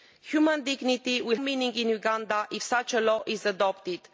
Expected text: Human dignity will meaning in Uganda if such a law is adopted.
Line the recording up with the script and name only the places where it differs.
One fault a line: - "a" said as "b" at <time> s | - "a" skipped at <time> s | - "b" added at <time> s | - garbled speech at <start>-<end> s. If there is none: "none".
none